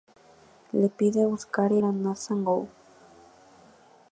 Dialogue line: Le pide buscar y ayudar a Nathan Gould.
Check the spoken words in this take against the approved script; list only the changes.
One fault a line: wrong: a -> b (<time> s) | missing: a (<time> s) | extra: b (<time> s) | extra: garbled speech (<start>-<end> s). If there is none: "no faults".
missing: ayudar (1.8 s)